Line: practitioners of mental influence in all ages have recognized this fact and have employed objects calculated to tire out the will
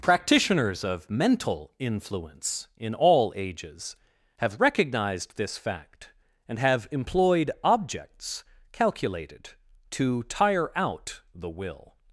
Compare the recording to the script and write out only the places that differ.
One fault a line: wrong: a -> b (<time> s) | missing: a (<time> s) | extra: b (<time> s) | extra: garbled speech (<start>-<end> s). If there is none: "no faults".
no faults